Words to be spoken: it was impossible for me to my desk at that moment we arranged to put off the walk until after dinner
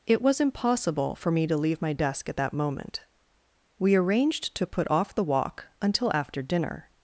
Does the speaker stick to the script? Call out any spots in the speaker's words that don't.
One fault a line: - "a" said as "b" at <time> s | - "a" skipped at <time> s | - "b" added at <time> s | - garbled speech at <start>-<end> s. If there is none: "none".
- "leave" added at 1.6 s